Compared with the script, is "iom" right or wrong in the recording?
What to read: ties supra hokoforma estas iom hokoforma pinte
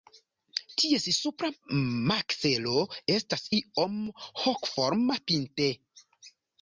right